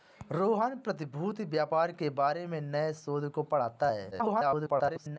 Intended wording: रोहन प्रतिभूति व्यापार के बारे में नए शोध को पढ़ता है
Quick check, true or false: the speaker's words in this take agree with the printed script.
false